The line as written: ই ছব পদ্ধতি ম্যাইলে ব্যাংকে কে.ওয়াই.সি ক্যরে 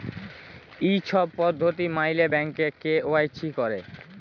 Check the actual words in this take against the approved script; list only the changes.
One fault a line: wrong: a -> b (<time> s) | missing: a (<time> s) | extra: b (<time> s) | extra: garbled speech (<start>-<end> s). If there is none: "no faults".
no faults